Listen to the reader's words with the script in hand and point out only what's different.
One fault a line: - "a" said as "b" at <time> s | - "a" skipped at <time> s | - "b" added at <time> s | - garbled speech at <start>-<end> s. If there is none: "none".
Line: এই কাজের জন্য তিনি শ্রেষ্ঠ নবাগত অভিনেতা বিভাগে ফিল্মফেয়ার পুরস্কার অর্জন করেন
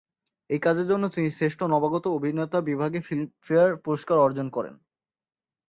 none